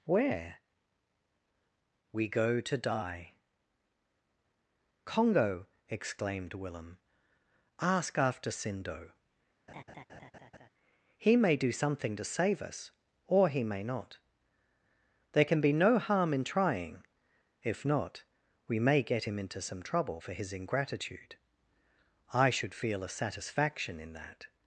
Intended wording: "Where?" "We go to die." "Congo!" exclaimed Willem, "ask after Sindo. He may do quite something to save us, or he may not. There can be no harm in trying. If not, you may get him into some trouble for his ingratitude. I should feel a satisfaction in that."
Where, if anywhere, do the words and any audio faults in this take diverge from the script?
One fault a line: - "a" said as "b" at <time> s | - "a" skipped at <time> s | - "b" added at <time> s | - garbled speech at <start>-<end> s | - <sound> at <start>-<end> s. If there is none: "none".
- laugh at 9.7-10.7 s
- "quite" skipped at 11.7 s
- "you" said as "we" at 18.7 s